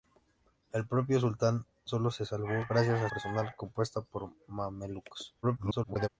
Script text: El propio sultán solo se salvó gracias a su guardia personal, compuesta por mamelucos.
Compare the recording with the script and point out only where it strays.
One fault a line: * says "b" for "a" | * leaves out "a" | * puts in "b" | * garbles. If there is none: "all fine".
* leaves out "su guardia"
* garbles